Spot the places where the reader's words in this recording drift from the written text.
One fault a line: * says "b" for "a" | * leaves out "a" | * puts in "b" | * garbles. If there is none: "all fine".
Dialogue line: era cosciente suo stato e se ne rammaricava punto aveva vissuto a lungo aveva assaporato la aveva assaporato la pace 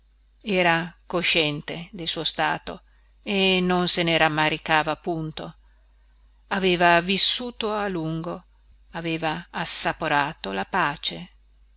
* puts in "del"
* puts in "non"
* leaves out "aveva assaporato la"